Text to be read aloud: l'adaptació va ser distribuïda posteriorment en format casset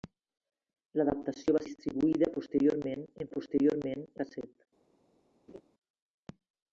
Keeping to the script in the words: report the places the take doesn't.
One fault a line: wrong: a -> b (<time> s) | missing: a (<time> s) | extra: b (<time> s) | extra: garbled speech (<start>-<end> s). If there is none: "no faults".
missing: ser (1.6 s)
wrong: format -> posteriorment (3.3 s)